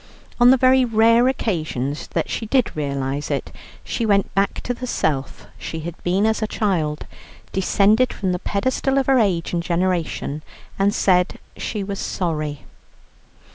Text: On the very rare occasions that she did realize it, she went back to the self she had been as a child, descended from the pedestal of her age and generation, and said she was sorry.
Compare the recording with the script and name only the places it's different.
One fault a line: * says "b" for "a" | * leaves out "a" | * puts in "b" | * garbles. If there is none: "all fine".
all fine